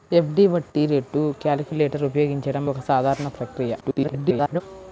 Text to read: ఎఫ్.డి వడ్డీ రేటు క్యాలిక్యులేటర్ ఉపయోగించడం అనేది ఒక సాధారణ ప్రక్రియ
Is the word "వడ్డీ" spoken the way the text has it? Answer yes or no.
yes